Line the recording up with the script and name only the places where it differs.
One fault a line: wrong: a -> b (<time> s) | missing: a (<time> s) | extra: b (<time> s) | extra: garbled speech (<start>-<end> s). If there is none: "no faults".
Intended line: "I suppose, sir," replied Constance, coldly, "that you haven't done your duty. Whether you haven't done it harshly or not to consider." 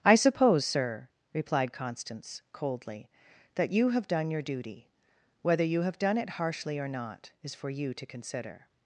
wrong: haven't -> have (3.9 s)
wrong: haven't -> have (5.8 s)
extra: is for you (7.4 s)